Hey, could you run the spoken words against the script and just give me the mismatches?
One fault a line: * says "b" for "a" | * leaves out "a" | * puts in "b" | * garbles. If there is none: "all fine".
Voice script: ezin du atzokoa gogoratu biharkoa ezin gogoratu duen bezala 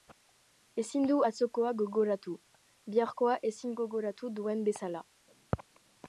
all fine